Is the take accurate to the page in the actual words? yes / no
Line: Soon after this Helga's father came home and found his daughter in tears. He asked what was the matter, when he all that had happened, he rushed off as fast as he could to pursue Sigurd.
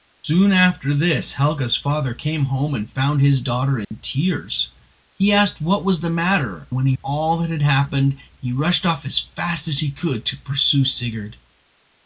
yes